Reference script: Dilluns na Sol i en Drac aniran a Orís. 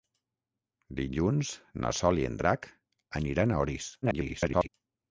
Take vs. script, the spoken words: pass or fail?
fail